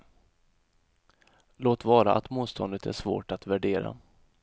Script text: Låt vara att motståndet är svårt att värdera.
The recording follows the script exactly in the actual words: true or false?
true